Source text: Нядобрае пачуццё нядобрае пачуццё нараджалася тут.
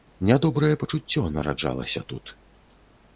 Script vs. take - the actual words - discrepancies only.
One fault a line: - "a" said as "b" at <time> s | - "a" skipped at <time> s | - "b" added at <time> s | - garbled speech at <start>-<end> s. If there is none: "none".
- "нядобрае пачуццё" skipped at 1.2 s